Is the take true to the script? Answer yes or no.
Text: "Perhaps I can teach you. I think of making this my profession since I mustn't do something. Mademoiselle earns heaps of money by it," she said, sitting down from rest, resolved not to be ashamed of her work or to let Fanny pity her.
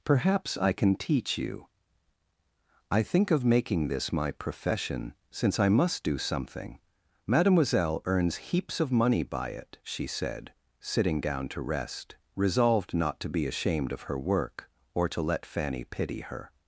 no